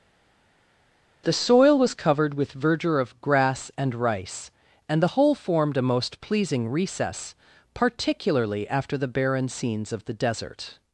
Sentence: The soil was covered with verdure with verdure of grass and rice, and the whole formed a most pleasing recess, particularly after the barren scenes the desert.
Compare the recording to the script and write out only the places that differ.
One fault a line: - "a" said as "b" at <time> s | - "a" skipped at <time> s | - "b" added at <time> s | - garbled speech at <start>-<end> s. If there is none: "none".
- "with verdure" skipped at 3.0 s
- "of" added at 9.9 s